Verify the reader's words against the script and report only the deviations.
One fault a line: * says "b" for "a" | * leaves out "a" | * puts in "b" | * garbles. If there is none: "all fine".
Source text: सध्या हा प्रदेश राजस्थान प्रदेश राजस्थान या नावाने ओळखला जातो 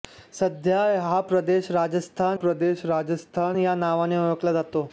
all fine